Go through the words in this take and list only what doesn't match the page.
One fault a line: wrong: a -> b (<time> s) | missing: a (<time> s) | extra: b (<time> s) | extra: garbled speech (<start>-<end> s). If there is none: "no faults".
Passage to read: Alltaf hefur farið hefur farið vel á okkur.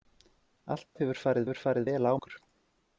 no faults